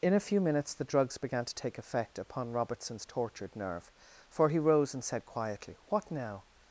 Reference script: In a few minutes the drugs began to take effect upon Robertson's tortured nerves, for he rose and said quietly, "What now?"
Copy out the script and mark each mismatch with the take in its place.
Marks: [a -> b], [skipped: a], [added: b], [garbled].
In a few minutes the drugs began to take effect upon Robertson's tortured [nerves, -> nerve] for he rose and said quietly, "What now?"